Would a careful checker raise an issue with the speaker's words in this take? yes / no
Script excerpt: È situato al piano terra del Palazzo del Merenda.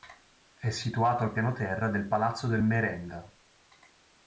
no